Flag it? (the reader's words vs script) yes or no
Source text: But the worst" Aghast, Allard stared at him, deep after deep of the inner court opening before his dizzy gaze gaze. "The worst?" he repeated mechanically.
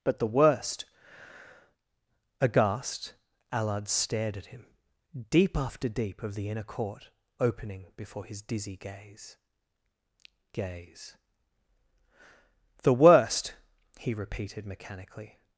no